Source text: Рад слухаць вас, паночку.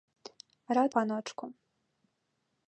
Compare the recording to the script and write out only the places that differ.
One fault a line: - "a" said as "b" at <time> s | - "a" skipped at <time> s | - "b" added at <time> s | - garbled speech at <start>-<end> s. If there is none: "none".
- "слухаць вас" skipped at 0.9 s